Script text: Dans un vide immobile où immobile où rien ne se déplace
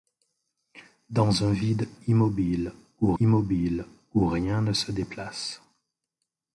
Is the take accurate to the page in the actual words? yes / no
yes